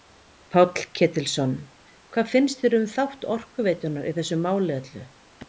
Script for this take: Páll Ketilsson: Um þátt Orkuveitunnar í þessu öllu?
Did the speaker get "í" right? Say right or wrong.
right